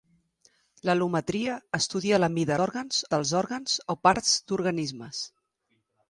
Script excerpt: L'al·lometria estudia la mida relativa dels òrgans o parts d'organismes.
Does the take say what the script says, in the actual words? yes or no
no